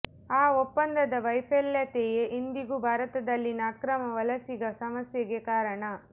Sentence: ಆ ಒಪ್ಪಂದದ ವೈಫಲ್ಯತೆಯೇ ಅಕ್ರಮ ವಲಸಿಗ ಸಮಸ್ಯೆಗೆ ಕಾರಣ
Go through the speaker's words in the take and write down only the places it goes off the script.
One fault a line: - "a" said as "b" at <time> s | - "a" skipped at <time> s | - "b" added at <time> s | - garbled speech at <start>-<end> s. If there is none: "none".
- "ಇಂದಿಗೂ ಭಾರತದಲ್ಲಿನ" added at 2.4 s